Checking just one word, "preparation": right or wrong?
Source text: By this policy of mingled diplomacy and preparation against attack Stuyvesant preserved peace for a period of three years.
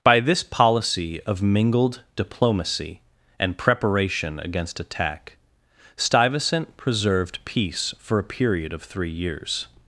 right